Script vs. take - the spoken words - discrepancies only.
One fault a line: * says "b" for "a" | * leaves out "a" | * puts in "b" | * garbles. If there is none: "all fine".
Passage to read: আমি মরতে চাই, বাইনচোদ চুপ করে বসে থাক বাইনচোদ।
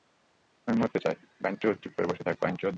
all fine